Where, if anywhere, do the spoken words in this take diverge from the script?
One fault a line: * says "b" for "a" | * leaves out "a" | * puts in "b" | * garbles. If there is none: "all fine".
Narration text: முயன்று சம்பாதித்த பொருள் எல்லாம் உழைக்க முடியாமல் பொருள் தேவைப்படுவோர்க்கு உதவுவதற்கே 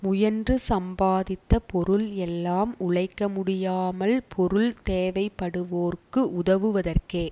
all fine